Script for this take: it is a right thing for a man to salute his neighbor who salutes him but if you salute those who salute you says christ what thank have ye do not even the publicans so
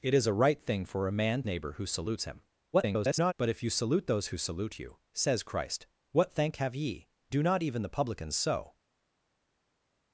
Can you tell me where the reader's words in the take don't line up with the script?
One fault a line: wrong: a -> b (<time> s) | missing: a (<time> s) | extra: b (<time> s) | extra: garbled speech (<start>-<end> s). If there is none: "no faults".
missing: to salute his (1.4 s)
extra: garbled speech (2.7-3.3 s)